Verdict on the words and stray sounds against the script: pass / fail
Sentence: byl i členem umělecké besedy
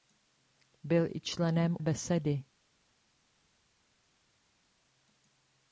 fail